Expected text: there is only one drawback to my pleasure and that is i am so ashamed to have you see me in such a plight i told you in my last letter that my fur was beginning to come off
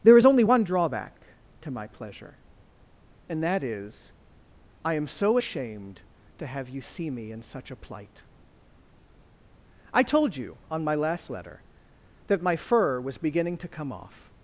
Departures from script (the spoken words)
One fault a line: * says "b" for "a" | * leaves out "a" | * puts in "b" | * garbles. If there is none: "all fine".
* says "on" for "in"